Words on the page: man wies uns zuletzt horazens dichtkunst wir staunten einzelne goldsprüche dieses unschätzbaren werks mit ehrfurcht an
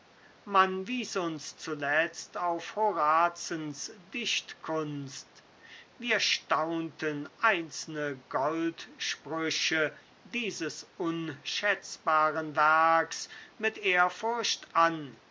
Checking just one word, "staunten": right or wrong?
right